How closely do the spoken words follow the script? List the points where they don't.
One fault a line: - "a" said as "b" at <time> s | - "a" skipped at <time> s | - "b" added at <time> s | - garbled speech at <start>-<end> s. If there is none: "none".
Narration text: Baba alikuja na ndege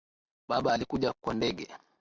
- "na" said as "kwa" at 1.2 s